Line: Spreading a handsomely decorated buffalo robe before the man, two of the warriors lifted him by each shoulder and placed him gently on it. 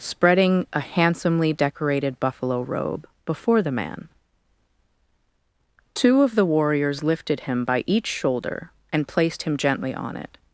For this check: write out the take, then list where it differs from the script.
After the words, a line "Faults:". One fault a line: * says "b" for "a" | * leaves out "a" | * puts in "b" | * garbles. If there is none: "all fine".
Spreading a handsomely decorated buffalo robe before the man, two of the warriors lifted him by each shoulder and placed him gently on it.
Faults:
all fine